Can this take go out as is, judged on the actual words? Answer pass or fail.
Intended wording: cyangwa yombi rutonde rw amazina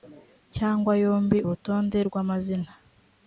pass